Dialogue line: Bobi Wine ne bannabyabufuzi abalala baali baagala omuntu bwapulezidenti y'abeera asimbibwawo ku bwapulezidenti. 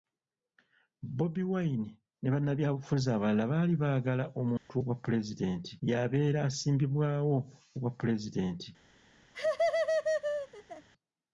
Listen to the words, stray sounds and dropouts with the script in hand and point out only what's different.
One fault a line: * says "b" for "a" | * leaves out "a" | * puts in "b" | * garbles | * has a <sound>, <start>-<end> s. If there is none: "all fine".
* has a dropout, 4.6-4.7 s
* has a laugh, 9.3-10.9 s